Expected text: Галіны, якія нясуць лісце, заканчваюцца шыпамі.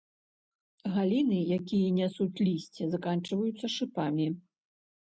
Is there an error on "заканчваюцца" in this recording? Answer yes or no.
no